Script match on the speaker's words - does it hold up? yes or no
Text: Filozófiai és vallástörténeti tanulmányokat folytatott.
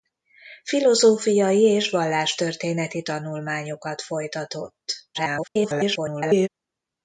no